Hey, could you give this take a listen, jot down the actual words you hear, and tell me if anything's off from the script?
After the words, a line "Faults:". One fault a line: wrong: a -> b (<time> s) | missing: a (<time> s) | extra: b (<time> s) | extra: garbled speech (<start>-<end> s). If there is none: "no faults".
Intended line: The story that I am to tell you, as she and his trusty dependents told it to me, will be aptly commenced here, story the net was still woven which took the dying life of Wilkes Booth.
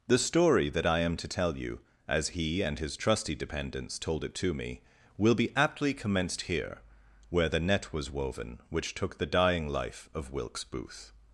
The story that I am to tell you, as he and his trusty dependents told it to me, will be aptly commenced here, where the net was woven which took the dying life of Wilkes Booth.
Faults:
wrong: she -> he (2.3 s)
wrong: story -> where (7.3 s)
missing: still (8.1 s)